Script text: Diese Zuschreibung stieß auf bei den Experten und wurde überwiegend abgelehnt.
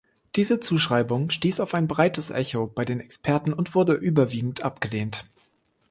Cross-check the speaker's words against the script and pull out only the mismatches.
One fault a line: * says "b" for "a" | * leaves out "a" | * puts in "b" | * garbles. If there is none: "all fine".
* puts in "ein breites Echo"